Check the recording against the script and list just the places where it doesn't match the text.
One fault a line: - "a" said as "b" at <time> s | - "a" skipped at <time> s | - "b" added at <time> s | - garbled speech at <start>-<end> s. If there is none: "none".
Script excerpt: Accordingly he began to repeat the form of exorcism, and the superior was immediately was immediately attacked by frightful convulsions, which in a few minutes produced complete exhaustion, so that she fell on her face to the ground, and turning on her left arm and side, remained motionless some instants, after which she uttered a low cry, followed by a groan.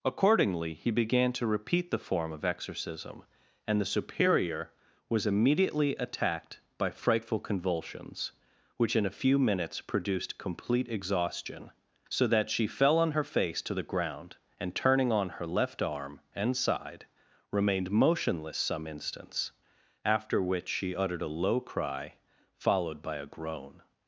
- "was immediately" skipped at 6.0 s